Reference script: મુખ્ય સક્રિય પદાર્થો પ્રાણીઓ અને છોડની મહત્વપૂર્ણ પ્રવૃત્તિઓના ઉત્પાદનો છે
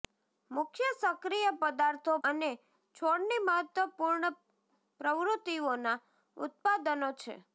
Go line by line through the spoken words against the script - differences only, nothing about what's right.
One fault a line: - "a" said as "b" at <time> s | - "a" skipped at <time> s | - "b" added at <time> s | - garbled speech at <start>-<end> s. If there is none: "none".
- "પ્રાણીઓ" skipped at 2.1 s